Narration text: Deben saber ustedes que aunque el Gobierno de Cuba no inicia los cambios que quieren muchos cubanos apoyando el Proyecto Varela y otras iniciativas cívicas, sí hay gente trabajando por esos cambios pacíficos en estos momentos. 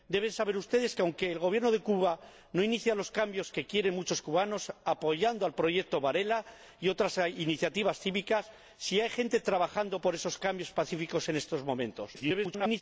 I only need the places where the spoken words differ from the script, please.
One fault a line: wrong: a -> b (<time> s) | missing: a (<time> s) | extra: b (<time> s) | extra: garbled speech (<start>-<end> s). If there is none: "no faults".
extra: garbled speech (12.1-12.8 s)